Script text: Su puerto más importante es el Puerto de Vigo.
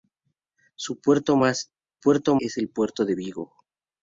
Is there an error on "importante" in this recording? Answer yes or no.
yes